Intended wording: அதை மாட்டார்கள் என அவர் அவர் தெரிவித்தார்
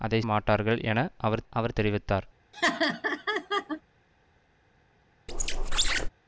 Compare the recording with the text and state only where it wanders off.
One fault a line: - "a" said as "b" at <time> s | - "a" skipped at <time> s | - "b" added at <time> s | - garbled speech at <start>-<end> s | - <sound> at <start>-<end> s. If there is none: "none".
- laugh at 2.5-3.8 s
- squeak at 5.3-6.1 s